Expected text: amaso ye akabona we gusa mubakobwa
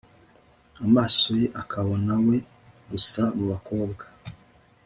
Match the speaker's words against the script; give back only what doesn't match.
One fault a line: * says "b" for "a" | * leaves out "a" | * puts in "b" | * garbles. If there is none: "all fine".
all fine